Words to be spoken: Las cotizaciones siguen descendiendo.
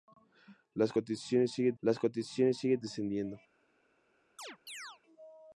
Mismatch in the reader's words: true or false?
true